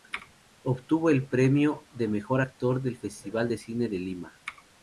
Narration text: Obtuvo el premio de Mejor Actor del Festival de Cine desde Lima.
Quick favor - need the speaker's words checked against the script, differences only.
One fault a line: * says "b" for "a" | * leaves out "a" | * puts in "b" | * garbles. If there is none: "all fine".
* says "de" for "desde"